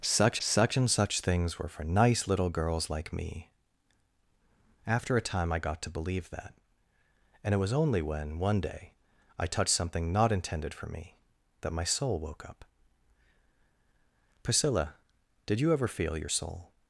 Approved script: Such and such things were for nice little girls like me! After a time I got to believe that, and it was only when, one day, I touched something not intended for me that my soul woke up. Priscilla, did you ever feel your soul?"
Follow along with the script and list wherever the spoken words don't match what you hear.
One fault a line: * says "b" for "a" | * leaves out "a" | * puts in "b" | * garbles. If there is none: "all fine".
* puts in "such"